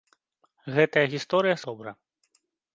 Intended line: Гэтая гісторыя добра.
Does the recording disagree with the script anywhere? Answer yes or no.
no